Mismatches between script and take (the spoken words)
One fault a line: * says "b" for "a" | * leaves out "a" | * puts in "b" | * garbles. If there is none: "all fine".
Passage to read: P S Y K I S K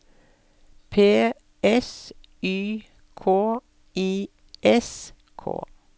all fine